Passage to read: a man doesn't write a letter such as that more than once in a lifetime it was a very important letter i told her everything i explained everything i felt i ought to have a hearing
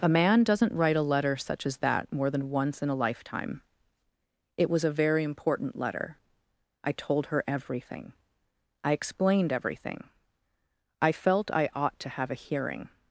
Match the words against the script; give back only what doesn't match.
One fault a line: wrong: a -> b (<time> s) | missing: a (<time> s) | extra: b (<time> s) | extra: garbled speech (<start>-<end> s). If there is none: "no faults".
no faults